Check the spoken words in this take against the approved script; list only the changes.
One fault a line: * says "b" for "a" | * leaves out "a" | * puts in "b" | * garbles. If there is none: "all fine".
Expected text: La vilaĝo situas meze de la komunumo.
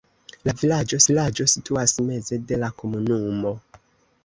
* puts in "vilaĝo"